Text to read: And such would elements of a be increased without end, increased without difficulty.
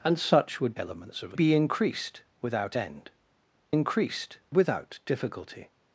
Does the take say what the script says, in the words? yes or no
yes